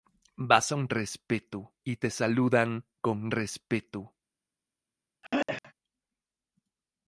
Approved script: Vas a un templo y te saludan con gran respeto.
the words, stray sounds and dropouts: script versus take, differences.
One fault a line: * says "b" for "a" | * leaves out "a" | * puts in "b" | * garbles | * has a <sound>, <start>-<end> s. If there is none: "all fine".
* says "respeto" for "templo"
* leaves out "gran"
* has a throat clearing, 5.2-5.7 s